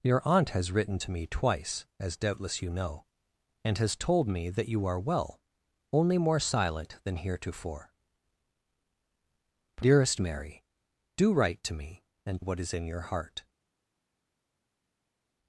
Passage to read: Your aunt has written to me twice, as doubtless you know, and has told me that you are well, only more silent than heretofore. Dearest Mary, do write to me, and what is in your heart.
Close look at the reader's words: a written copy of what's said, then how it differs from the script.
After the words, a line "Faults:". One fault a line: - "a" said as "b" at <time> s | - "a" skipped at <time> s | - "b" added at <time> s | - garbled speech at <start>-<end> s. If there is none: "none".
Your aunt has written to me twice, as doubtless you know, and has told me that you are well, only more silent than heretofore. Dearest Mary, do write to me, and what is in your heart.
Faults:
none